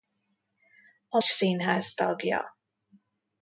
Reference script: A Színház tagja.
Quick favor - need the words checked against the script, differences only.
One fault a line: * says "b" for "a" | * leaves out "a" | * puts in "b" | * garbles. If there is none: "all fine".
all fine